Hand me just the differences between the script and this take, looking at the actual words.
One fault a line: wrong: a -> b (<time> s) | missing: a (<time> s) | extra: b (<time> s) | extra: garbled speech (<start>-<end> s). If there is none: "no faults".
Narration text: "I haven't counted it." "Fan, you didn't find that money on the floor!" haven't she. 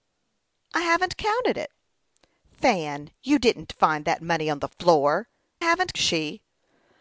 no faults